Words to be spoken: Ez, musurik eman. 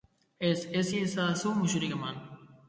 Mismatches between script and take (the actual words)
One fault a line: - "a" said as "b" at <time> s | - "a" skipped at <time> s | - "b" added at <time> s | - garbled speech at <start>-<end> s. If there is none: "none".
- "ez iezadazu" added at 0.7 s